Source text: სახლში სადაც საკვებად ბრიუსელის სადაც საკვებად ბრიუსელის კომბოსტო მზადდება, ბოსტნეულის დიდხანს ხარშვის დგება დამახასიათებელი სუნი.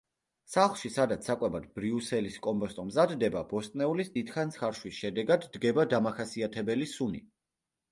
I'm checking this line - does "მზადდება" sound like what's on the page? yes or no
yes